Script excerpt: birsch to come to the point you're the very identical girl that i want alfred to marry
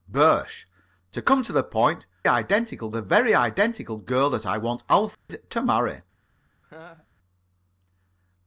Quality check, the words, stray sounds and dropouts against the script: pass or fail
fail